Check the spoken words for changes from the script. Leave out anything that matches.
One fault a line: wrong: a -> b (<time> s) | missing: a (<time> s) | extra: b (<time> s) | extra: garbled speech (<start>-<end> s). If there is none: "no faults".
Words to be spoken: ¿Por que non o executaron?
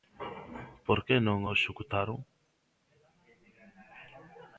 no faults